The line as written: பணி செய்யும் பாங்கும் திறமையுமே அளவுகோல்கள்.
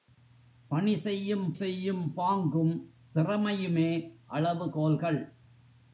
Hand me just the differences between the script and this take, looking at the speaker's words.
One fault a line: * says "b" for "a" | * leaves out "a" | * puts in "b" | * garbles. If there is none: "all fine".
* puts in "செய்யும்"